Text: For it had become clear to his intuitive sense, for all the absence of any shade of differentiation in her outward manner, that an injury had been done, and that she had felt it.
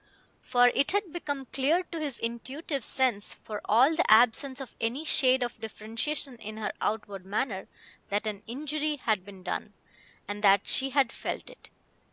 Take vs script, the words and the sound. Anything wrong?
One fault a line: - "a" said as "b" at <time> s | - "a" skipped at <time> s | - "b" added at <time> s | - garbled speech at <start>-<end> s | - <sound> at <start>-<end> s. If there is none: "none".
none